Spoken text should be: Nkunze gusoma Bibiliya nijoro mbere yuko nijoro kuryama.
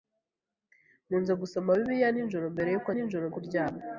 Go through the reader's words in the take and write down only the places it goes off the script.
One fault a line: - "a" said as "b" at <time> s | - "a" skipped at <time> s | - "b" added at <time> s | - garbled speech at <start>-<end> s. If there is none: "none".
none